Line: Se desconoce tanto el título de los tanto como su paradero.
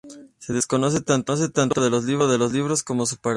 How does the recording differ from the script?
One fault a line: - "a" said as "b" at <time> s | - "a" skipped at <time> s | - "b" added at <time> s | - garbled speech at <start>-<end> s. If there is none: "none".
- "tanto" said as "libros" at 2.5 s